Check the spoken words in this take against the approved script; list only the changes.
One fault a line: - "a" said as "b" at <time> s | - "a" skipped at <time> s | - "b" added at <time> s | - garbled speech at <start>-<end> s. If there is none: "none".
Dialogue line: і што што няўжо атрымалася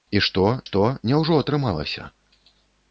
none